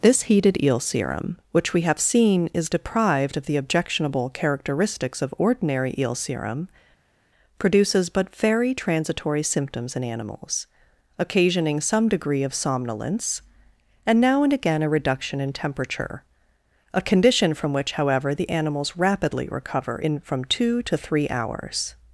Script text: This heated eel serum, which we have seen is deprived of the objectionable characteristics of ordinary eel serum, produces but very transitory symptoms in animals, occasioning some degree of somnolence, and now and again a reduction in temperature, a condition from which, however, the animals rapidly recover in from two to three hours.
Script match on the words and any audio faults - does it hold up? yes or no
yes